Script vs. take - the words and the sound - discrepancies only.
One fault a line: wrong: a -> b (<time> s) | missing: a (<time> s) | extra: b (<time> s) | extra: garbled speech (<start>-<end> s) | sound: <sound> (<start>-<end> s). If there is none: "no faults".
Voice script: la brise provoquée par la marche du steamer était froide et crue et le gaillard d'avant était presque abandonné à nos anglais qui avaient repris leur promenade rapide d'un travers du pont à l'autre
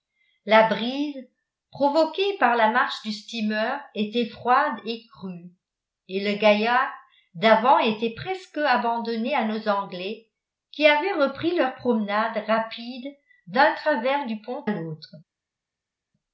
missing: à (14.7 s)